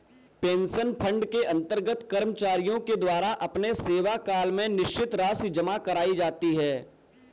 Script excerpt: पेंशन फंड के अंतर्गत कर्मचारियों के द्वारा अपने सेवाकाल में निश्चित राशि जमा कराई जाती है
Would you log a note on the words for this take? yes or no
no